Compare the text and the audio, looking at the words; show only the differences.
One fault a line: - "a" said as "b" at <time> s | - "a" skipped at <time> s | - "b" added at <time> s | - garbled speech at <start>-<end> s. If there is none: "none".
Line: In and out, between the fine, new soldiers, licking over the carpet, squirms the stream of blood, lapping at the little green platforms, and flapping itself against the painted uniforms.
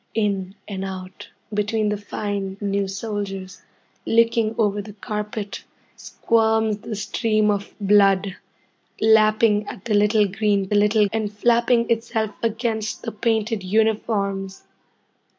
- "platforms" said as "little" at 10.7 s